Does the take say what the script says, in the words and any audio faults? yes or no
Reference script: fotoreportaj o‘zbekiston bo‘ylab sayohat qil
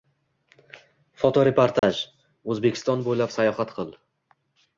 no